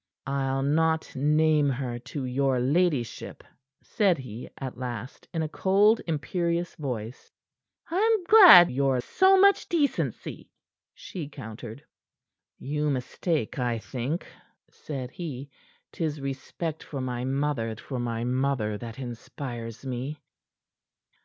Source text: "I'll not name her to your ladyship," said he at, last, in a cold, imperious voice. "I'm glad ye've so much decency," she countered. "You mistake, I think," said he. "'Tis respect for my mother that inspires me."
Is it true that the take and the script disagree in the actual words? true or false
true